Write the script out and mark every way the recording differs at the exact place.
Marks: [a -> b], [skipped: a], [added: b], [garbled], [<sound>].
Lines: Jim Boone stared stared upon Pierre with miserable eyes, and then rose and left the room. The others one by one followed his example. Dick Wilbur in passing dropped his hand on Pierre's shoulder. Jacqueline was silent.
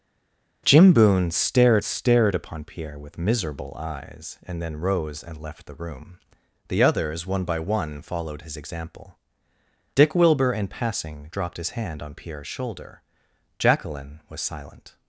Jim Boone stared stared upon Pierre with miserable eyes, and then rose and left the room. The others one by one followed his example. Dick Wilbur in passing dropped his hand on Pierre's shoulder. Jacqueline was silent.